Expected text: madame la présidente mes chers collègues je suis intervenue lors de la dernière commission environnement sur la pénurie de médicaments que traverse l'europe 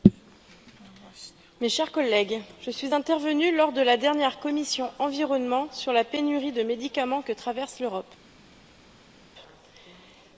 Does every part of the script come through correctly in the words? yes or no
yes